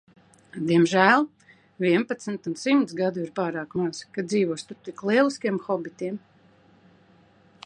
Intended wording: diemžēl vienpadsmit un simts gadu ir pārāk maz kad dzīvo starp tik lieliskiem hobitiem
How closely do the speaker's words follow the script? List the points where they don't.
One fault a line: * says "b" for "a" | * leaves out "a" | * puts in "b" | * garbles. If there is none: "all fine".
all fine